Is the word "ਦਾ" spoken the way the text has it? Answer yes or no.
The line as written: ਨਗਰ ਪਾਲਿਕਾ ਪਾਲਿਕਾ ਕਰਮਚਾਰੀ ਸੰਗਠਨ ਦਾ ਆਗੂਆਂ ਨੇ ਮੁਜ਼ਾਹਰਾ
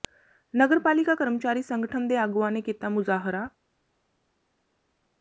no